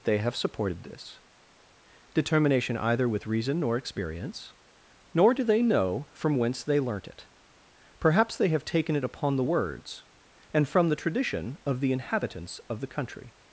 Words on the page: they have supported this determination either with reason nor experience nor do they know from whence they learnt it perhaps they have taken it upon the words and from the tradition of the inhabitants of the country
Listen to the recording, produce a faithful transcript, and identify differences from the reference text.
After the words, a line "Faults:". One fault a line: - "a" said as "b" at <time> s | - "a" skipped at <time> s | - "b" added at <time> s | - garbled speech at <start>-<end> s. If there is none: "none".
they have supported this determination either with reason nor experience nor do they know from whence they learnt it perhaps they have taken it upon the words and from the tradition of the inhabitants of the country
Faults:
none